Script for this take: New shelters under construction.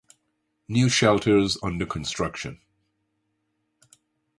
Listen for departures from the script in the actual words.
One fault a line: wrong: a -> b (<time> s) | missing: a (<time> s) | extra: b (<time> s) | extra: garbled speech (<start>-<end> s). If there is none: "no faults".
no faults